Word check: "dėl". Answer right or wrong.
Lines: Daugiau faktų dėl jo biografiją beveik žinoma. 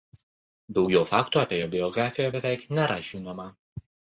wrong